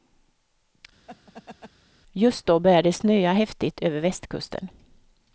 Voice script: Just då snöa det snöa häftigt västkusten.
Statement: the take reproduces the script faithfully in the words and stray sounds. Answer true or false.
false